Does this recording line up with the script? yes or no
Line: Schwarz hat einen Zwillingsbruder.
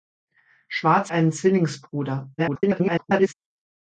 no